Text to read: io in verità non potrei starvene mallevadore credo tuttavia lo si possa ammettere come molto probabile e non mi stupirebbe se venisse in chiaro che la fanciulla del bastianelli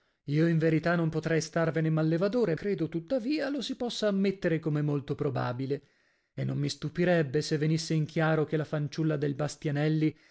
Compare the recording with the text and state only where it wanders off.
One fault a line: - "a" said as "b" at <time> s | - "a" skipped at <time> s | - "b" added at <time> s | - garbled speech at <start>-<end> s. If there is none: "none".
none